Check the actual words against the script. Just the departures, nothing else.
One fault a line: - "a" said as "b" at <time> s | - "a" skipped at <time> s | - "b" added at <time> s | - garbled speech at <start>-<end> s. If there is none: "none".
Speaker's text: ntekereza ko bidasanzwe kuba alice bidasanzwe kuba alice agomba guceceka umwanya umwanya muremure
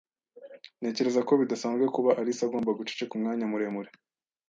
- "bidasanzwe kuba alice" skipped at 2.4 s
- "umwanya" skipped at 3.5 s